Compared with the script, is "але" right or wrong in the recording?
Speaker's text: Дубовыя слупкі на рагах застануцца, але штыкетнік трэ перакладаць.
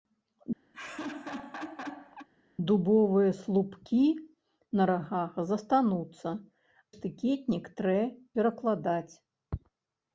wrong